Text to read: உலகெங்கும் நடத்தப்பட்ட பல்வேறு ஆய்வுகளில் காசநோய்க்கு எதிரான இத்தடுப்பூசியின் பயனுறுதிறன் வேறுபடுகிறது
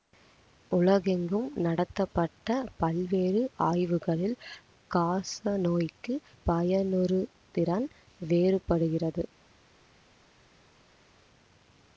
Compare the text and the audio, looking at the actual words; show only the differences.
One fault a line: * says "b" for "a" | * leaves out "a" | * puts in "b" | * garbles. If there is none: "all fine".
* leaves out "எதிரான இத்தடுப்பூசியின்"